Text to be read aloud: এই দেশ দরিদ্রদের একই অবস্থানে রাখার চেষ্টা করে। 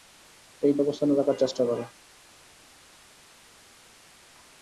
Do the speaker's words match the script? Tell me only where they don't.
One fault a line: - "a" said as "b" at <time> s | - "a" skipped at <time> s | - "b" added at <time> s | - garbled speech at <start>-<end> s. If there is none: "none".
- "দেশ দরিদ্রদের একই" skipped at 0.7 s